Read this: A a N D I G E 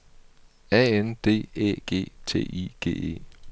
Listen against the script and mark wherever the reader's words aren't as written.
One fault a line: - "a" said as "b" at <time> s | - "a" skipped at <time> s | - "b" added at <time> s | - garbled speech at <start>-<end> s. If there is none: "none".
- "a" skipped at 0.8 s
- "Æ G T" added at 1.6 s